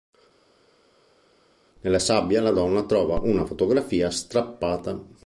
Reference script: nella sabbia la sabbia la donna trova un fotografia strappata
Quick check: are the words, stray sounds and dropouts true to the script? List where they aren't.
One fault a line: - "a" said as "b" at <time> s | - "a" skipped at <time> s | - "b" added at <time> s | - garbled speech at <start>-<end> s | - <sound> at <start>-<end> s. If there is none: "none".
- "sabbia la" skipped at 2.5 s
- "un" said as "una" at 3.2 s